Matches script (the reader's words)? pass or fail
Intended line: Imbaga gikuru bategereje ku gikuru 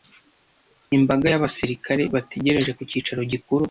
fail